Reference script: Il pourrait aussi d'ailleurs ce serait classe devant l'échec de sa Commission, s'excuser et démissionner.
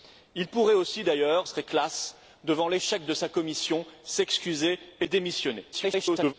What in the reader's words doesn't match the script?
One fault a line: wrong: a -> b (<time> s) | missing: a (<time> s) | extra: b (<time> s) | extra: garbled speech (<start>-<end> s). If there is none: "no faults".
missing: ce (1.5 s)
extra: garbled speech (5.7-6.3 s)